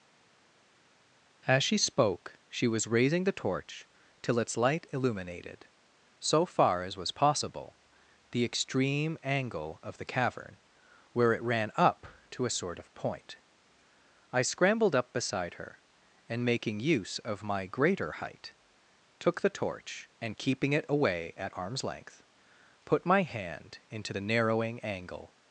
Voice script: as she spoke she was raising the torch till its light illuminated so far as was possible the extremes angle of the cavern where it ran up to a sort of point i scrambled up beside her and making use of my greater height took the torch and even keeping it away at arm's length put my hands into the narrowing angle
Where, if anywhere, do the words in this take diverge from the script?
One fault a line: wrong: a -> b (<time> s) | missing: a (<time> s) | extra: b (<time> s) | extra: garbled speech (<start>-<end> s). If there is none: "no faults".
wrong: extremes -> extreme (8.5 s)
missing: even (20.4 s)
wrong: hands -> hand (23.2 s)